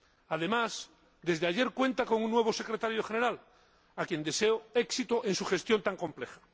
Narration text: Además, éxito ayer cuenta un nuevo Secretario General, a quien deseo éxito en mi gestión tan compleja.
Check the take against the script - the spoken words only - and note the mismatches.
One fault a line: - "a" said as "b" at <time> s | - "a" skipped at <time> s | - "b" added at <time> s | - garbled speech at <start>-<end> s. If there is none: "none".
- "éxito" said as "desde" at 1.2 s
- "con" added at 2.0 s
- "mi" said as "su" at 5.3 s